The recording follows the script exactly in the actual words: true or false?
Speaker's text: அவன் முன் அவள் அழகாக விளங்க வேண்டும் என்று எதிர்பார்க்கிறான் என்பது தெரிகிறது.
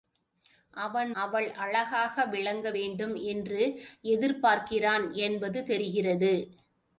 false